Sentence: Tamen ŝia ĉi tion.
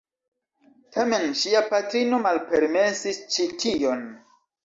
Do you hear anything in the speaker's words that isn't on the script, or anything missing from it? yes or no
yes